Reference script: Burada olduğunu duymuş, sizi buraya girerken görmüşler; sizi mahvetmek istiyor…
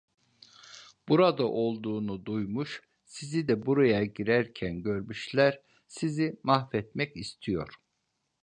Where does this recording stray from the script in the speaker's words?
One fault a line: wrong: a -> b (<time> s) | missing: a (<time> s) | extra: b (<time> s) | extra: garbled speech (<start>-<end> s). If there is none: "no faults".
extra: de (3.5 s)